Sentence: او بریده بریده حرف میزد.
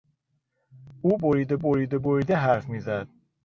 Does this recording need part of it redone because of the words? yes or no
yes